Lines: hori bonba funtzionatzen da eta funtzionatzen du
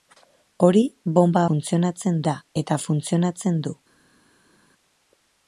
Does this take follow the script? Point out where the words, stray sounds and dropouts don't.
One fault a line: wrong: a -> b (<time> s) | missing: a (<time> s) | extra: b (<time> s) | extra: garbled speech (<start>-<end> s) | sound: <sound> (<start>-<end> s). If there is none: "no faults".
no faults